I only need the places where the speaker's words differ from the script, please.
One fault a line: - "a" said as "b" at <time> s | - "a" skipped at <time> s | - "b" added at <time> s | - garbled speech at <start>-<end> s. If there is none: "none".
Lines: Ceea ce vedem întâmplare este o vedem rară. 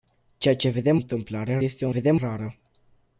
none